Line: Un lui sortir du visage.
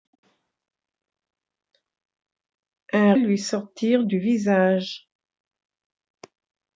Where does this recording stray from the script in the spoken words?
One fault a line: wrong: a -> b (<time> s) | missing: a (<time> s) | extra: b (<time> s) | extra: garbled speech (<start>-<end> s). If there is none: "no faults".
no faults